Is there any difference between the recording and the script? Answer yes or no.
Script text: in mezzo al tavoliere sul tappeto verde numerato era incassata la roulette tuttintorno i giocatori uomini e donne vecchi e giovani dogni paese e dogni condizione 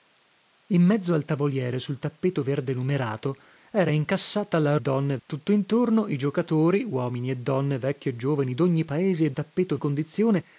yes